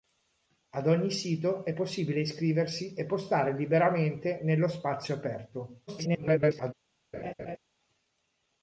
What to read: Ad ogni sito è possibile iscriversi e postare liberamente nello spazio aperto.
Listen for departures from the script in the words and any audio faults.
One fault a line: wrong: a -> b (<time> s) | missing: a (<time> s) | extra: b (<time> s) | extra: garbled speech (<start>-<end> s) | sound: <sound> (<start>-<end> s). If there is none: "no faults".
extra: garbled speech (5.9-6.7 s)
sound: laugh (7.1-7.6 s)